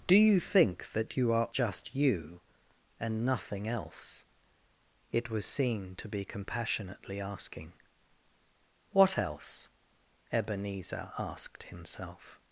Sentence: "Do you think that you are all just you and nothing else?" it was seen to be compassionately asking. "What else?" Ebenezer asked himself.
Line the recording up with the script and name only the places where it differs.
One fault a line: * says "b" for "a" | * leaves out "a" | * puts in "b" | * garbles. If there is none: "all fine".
* leaves out "all"